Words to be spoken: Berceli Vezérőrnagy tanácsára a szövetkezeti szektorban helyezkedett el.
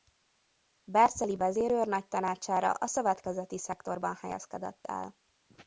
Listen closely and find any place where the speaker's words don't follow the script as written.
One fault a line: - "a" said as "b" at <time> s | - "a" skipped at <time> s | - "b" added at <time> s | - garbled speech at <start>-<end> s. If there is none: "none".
none